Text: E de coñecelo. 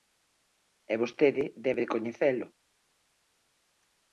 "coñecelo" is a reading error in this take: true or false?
false